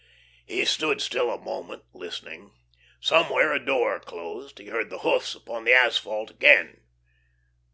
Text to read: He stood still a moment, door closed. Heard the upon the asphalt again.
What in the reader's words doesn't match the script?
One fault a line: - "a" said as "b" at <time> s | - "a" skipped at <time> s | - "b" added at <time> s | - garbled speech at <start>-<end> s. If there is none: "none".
- "listening Somewhere a" added at 1.9 s
- "He" added at 4.6 s
- "hoofs" added at 5.0 s